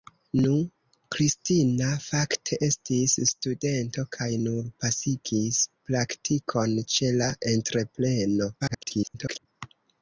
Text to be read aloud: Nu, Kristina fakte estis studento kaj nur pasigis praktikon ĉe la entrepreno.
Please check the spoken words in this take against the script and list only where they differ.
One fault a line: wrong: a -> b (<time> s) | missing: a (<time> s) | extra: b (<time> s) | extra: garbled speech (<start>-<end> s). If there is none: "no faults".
extra: garbled speech (8.6-9.5 s)